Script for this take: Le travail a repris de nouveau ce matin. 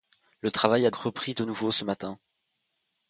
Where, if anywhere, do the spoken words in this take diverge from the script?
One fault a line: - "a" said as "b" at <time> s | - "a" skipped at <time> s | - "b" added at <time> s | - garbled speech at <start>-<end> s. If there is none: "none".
none